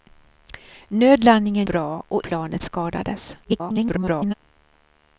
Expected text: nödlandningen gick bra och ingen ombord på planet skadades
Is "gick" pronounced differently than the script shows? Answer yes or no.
yes